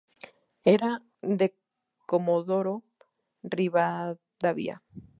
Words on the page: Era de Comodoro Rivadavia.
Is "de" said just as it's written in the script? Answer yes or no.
yes